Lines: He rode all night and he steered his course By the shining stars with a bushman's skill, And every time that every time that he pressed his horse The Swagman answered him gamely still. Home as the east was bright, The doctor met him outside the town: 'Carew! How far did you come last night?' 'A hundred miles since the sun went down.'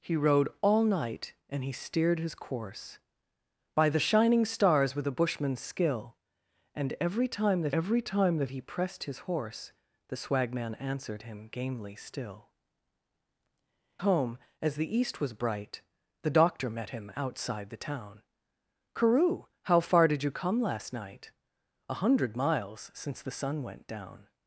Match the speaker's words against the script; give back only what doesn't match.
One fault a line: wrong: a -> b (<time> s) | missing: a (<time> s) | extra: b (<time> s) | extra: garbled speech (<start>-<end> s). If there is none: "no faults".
no faults